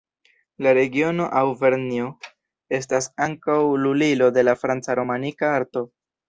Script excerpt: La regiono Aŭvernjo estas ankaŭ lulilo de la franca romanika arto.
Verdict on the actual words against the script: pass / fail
pass